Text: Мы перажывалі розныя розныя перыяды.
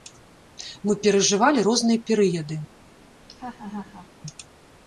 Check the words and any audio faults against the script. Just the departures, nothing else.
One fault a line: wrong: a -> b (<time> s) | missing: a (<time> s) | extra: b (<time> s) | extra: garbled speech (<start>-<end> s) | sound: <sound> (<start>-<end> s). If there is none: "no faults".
missing: розныя (2.0 s)
sound: laugh (3.2-4.1 s)